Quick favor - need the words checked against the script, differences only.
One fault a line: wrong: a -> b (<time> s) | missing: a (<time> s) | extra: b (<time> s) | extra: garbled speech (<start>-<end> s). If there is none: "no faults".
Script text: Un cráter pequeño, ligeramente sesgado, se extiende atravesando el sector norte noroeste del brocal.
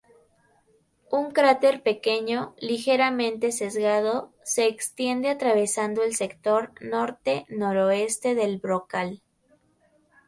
no faults